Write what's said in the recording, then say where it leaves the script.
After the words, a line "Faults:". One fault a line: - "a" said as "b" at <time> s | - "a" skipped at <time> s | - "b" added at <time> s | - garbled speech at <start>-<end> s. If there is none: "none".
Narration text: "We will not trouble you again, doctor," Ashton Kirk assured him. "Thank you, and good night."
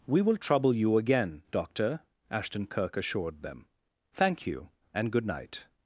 "We will trouble you again, doctor," Ashton Kirk assured them. "Thank you, and good night."
Faults:
- "not" skipped at 0.4 s
- "him" said as "them" at 3.4 s